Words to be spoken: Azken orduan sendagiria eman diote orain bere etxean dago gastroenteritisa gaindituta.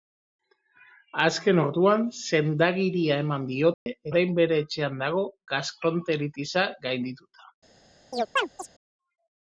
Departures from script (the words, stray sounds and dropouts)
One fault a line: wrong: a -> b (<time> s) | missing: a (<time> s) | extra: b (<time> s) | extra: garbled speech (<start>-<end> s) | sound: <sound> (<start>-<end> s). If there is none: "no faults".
sound: dropout (3.7-3.9 s)
sound: chirp (8.1-8.7 s)